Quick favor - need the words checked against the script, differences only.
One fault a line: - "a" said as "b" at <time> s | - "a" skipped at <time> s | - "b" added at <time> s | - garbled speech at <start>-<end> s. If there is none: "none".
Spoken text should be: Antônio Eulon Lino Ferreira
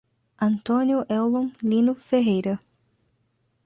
none